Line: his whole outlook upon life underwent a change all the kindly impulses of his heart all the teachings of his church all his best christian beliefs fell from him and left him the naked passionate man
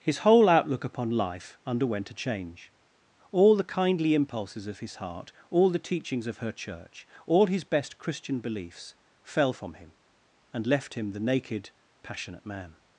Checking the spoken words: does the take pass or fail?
fail